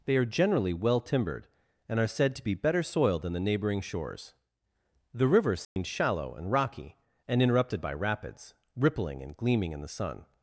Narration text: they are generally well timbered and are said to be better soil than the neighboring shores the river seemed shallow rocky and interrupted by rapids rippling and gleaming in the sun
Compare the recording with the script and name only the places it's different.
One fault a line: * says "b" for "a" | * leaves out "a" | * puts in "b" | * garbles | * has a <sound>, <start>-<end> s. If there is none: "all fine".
* has a dropout, 5.6-5.8 s
* puts in "and"